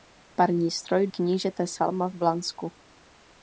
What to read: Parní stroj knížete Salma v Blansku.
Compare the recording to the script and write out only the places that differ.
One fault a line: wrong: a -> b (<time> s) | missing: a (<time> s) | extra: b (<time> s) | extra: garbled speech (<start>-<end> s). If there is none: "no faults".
no faults